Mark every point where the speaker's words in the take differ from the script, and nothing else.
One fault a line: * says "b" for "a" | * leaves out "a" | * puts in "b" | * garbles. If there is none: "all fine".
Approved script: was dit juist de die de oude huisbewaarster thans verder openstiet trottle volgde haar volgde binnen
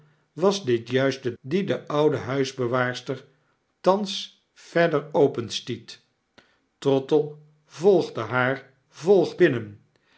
all fine